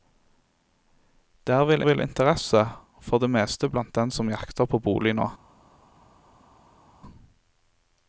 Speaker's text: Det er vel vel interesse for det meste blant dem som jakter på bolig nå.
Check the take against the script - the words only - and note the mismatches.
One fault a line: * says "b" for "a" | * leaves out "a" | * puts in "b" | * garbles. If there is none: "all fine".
all fine